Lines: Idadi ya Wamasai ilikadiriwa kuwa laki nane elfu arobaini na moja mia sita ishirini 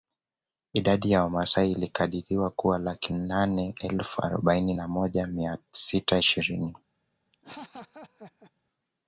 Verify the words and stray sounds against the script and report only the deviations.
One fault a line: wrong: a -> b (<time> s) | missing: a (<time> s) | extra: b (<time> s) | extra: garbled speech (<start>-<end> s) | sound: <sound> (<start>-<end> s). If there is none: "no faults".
sound: laugh (7.3-8.5 s)